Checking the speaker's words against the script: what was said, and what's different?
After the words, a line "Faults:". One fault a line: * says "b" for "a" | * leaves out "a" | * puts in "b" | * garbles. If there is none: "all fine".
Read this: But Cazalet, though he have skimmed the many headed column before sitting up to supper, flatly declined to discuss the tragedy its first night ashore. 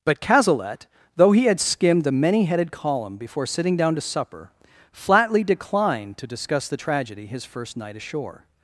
But Cazalet, though he had skimmed the many headed column before sitting down to supper, flatly declined to discuss the tragedy his first night ashore.
Faults:
* says "had" for "have"
* says "down" for "up"
* says "his" for "its"